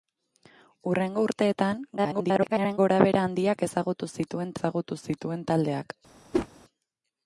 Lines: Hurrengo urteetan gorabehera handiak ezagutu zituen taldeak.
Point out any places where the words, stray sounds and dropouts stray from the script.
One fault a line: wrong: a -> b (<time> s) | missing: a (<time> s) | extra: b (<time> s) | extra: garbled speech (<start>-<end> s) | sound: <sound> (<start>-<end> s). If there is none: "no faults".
extra: garbled speech (2.0-2.8 s)
extra: ezagutu zituen (4.5 s)
sound: whoosh (6.3-6.5 s)